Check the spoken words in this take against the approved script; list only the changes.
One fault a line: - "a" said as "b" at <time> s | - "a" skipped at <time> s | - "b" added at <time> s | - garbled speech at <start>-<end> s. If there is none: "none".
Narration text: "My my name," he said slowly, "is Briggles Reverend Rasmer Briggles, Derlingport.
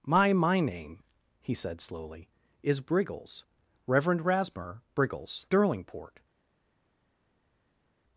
none